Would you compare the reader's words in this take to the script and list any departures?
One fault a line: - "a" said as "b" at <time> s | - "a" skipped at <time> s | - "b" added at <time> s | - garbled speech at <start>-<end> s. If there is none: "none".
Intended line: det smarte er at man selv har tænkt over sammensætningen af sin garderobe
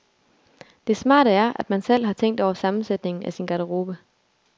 none